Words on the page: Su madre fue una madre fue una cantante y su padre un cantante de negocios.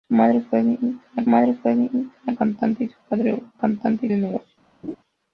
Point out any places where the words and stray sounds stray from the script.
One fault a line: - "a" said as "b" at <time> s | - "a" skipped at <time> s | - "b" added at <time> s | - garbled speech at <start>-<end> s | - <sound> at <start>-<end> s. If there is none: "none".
- laugh at 4.8-5.0 s